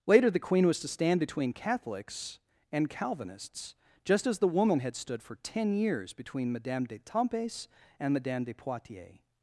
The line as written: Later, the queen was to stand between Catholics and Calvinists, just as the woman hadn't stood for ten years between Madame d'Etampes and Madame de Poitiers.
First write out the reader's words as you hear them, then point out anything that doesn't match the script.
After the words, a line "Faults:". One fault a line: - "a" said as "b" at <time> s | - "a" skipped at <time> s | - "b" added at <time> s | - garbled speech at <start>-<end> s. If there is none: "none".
Later, the queen was to stand between Catholics and Calvinists, just as the woman had stood for ten years between Madame d'Etampes and Madame de Poitiers.
Faults:
- "hadn't" said as "had" at 4.8 s